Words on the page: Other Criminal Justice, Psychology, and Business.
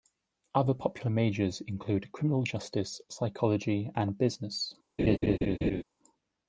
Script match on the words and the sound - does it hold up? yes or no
no